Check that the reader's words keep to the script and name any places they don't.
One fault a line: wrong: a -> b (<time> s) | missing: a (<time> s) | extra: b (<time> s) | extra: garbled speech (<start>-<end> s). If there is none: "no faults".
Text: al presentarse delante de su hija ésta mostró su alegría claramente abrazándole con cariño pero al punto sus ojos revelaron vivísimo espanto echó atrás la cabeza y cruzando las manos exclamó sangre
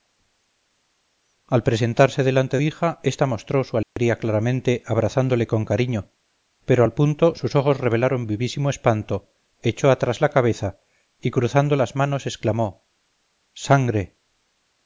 missing: de su (2.6 s)